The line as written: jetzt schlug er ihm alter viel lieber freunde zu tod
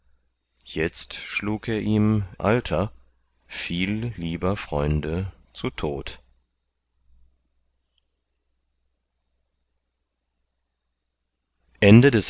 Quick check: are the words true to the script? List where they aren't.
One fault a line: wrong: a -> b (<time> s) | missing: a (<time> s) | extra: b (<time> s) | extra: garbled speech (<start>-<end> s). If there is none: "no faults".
no faults